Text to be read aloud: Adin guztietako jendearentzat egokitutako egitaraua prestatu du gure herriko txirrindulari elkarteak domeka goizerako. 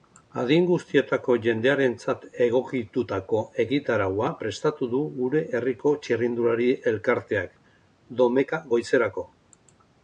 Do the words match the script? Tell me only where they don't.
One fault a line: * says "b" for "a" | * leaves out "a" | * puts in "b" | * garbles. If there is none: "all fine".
all fine